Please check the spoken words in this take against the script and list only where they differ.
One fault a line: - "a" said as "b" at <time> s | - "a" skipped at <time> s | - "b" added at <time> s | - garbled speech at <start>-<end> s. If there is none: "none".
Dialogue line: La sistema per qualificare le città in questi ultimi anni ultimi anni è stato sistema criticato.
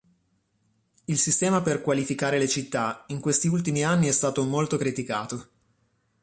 - "La" said as "Il" at 1.1 s
- "ultimi anni" skipped at 4.1 s
- "sistema" said as "molto" at 4.4 s